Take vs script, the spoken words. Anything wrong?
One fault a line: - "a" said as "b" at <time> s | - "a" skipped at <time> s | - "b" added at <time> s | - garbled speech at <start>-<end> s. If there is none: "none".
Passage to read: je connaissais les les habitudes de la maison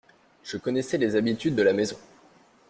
- "les" skipped at 1.2 s